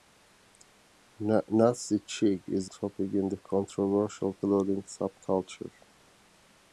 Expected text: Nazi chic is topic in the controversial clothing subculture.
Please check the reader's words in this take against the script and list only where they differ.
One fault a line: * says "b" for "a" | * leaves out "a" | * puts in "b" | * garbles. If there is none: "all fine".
all fine